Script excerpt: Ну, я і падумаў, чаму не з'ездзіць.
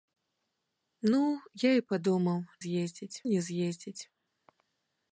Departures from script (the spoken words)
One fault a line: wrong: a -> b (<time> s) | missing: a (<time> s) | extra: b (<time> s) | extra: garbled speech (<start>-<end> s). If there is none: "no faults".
wrong: чаму -> з'ездзіць (2.6 s)